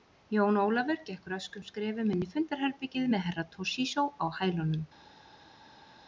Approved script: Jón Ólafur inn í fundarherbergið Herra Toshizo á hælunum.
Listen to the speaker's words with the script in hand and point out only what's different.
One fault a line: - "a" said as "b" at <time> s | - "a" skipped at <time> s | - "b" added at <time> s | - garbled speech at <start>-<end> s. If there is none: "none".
- "gekk röskum skrefum" added at 1.1 s
- "með" added at 3.1 s